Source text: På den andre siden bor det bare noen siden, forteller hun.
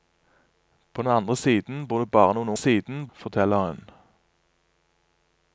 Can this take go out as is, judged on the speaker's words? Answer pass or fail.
pass